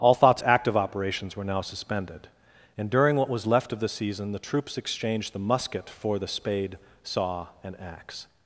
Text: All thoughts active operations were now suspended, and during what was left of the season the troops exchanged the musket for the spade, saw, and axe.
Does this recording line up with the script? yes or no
yes